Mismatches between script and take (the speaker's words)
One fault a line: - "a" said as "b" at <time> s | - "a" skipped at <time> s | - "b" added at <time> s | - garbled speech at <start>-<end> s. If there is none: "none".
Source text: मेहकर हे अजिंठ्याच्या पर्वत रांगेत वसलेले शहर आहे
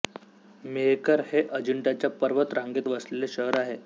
none